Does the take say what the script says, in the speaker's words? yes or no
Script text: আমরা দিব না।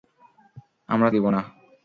yes